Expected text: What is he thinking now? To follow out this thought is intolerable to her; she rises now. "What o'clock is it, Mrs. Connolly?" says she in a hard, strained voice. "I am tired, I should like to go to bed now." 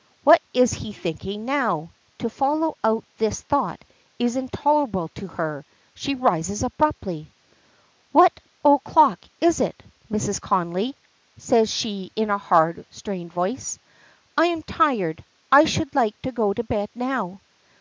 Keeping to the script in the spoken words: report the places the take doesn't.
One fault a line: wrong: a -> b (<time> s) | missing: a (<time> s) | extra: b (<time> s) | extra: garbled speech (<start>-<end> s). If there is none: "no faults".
wrong: now -> abruptly (6.6 s)